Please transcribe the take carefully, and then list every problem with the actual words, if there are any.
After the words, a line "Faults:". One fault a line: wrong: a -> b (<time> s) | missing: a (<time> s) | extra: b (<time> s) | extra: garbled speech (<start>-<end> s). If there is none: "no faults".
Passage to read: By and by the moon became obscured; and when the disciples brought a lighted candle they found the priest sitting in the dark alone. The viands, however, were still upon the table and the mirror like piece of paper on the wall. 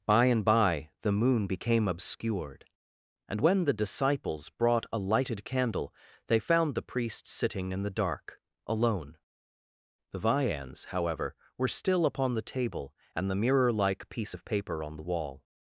By and by the moon became obscured; and when the disciples brought a lighted candle they found the priest sitting in the dark alone. The viands, however, were still upon the table and the mirror like piece of paper on the wall.
Faults:
no faults